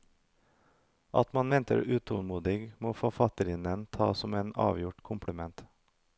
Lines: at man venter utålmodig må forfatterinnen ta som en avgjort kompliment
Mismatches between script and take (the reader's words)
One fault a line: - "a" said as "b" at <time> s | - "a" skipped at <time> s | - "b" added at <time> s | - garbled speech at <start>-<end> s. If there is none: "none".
none